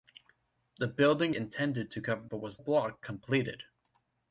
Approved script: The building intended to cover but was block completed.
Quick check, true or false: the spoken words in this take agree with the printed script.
true